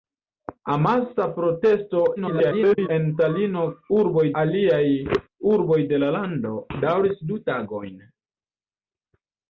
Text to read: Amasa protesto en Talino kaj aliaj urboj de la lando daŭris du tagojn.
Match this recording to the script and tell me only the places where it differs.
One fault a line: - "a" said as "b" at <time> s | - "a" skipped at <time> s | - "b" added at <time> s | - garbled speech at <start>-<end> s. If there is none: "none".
- garbled speech at 2.2-2.9 s
- "kaj" said as "urboj" at 4.0 s